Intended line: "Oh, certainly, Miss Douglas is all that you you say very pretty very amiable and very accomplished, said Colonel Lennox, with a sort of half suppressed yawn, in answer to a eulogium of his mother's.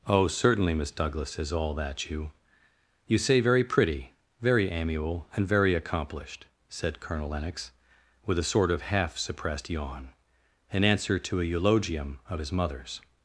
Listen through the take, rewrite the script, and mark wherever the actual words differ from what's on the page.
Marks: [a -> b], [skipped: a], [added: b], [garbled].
"Oh, certainly, Miss Douglas is all that you you say very pretty very amiable and very accomplished, said Colonel Lennox, with a sort of half suppressed yawn, in answer to a eulogium of his mother's.